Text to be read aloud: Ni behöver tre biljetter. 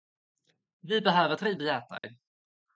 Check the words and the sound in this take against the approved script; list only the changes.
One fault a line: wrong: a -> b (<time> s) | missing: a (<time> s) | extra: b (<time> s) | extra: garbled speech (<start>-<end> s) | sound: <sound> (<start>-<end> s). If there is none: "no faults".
wrong: Ni -> Vi (0.8 s)
sound: dropout (2.0-2.0 s)